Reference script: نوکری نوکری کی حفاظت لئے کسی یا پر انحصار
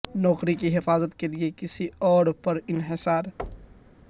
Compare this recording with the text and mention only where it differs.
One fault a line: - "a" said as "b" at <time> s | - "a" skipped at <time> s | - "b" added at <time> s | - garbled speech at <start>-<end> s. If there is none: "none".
- "نوکری" skipped at 0.5 s
- "کے" added at 1.2 s
- "یا" said as "اور" at 2.0 s